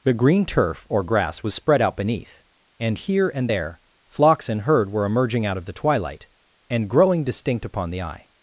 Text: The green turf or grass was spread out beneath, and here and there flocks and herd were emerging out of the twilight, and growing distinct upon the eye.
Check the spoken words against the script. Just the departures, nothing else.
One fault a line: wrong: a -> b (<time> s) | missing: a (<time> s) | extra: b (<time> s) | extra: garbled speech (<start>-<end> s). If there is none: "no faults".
no faults